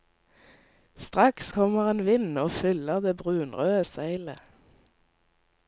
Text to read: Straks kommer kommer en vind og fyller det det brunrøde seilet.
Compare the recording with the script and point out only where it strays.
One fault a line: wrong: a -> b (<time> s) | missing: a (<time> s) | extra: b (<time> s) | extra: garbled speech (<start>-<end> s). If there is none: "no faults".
missing: kommer (1.9 s)
missing: det (3.2 s)